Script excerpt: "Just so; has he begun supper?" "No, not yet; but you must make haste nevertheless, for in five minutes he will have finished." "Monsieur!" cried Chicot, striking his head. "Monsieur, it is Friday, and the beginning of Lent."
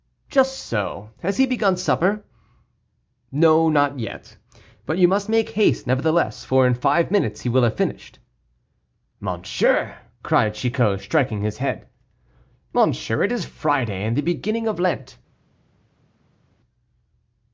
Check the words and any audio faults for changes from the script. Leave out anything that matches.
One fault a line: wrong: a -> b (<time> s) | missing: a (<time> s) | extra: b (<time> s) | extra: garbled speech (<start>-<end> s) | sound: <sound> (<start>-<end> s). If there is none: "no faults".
no faults